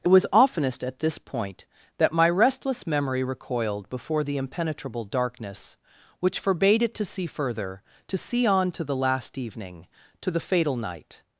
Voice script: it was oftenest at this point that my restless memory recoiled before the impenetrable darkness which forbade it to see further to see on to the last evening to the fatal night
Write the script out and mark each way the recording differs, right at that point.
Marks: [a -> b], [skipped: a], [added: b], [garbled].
it was oftenest at this point that my restless memory recoiled before the impenetrable darkness which forbade it to see further to see on to the last evening to the fatal night